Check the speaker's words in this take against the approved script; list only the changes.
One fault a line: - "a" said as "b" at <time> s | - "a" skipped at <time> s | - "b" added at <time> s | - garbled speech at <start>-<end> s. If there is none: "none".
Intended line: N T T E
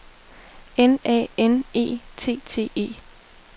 - "A N E" added at 1.1 s